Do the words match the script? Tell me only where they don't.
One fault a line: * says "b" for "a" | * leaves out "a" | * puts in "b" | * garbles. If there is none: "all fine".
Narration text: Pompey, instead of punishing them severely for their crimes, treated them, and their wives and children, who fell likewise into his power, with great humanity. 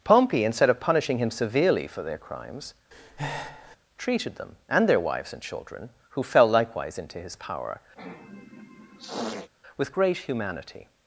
* says "him" for "them"